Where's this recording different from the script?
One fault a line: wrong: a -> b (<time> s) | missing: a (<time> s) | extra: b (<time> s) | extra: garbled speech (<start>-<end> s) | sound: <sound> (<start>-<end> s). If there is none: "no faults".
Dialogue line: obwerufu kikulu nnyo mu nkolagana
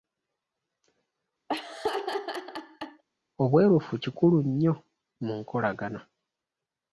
sound: laugh (1.5-3.0 s)